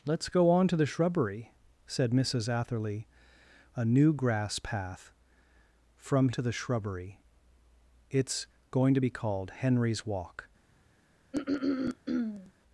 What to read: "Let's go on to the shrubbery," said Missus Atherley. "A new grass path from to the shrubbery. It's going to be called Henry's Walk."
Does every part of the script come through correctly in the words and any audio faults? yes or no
no